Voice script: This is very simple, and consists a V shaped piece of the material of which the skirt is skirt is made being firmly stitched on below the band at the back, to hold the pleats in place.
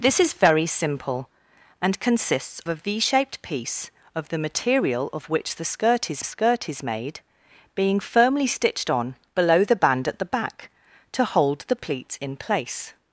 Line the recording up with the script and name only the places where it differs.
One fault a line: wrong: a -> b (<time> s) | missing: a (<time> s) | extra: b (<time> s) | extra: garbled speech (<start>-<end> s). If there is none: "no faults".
no faults